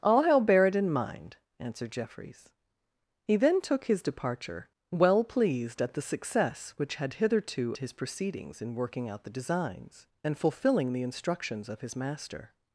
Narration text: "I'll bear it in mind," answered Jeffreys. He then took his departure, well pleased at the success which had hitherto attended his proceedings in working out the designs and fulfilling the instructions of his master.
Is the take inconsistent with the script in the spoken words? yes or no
yes